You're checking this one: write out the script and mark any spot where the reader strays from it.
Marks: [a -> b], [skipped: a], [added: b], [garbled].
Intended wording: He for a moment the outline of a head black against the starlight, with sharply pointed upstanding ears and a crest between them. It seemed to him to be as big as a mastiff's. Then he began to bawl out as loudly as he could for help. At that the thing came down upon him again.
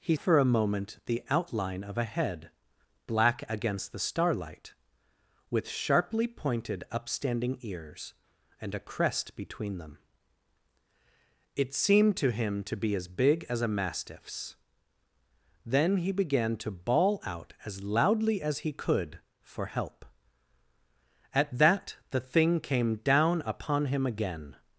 He for a moment the outline of a head black against the starlight, with sharply pointed upstanding ears and a crest between them. It seemed to him to be as big as a mastiff's. Then he began to bawl out as loudly as he could for help. At that the thing came down upon him again.